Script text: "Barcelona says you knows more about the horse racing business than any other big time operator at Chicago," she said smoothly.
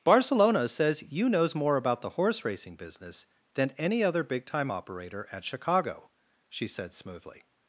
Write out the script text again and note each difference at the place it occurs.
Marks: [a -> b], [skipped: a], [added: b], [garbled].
"Barcelona says you knows more about the horse racing business than any other big time operator at Chicago," she said smoothly.